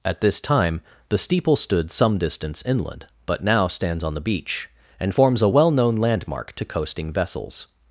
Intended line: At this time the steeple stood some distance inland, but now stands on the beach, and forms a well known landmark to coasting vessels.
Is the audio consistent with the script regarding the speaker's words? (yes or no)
yes